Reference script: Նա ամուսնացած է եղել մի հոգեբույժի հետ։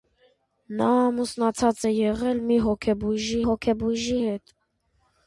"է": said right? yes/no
yes